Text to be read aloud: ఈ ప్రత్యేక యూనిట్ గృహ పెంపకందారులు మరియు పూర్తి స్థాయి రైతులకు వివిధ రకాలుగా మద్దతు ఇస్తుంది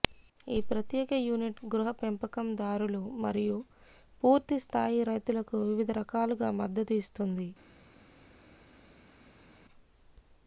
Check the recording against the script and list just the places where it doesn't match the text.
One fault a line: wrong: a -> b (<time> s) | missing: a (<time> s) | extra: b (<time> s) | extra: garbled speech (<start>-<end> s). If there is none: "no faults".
no faults